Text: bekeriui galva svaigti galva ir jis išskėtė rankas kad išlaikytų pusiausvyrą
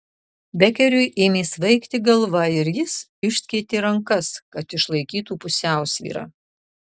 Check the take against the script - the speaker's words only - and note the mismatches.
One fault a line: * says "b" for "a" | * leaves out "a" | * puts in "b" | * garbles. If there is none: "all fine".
* says "ėmė" for "galva"